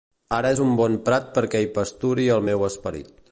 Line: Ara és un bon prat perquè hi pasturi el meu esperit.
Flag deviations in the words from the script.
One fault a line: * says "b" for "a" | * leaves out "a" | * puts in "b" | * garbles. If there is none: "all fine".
all fine